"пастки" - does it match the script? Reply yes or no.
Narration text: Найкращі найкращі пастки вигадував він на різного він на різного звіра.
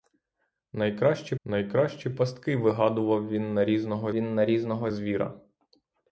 yes